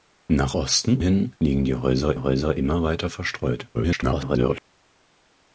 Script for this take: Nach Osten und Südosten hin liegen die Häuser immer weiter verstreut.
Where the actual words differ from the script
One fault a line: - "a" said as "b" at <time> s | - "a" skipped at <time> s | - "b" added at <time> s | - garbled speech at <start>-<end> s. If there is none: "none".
- "und Südosten" skipped at 1.0 s
- "Häuser" added at 2.1 s
- garbled speech at 3.7-4.6 s